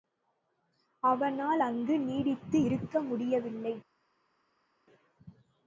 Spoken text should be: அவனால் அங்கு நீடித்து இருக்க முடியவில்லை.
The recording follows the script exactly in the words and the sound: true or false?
true